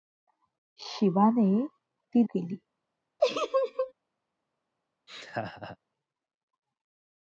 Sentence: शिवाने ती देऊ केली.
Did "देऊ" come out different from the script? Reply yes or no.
yes